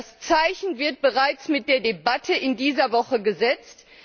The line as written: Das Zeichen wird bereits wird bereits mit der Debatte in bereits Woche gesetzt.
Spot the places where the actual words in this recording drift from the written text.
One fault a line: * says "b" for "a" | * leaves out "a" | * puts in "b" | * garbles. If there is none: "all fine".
* leaves out "wird bereits"
* says "dieser" for "bereits"